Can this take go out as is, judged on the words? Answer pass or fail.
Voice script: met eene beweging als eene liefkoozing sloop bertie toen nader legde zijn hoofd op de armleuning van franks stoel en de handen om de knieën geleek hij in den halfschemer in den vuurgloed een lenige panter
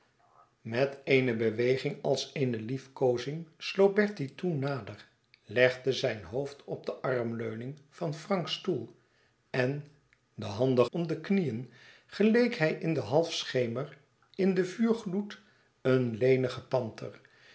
pass